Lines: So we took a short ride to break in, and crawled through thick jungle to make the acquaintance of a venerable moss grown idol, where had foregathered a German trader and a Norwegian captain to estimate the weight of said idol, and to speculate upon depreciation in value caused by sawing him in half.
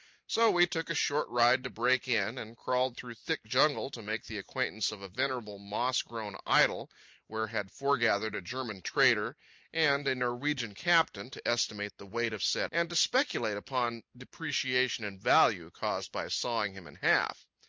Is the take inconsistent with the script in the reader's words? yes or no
yes